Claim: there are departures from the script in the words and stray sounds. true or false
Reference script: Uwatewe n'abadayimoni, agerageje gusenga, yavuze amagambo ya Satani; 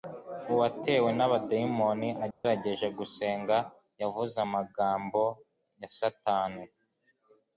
true